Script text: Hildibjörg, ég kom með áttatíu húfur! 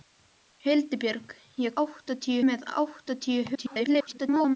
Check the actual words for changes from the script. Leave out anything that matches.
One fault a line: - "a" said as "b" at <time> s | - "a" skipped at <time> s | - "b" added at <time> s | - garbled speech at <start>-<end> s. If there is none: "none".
- "kom" said as "áttatíu" at 1.8 s
- garbled speech at 3.5-4.6 s